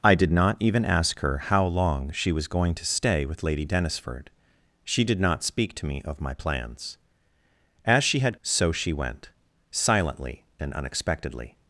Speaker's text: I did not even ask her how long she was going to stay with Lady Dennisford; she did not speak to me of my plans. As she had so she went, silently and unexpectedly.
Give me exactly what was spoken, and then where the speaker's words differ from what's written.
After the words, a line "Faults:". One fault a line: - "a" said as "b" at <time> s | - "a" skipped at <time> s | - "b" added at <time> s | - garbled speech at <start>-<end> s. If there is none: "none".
I did not even ask her how long she was going to stay with Lady Dennisford; she did not speak to me of my plans. As she had so she went, silently and unexpectedly.
Faults:
none